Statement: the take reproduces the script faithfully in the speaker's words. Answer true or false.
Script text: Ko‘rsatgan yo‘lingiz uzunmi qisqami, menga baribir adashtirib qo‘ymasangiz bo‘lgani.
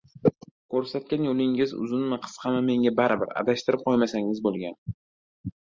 true